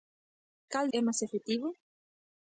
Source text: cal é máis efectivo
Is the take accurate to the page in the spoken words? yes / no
yes